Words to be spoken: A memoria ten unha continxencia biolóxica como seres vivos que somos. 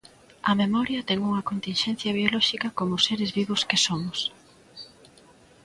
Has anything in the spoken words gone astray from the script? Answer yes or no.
no